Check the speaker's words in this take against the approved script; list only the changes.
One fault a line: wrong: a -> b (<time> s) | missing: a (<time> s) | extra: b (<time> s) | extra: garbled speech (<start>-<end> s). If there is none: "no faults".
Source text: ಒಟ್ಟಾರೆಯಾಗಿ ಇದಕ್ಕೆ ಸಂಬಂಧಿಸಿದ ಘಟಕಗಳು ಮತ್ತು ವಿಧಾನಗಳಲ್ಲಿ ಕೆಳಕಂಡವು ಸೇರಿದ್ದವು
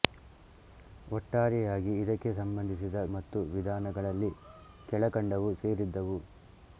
missing: ಘಟಕಗಳು (3.0 s)